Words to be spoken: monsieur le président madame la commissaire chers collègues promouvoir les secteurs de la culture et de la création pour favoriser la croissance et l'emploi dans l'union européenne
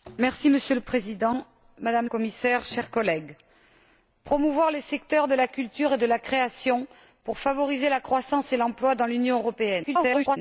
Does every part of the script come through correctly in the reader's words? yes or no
no